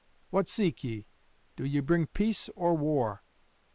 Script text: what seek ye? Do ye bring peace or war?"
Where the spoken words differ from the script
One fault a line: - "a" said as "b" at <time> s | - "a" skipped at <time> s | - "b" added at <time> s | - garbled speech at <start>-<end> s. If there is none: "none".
none